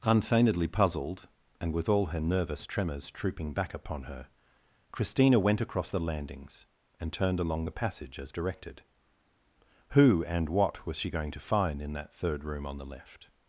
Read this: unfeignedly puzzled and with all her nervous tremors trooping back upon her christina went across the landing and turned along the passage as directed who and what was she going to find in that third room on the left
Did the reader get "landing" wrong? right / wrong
wrong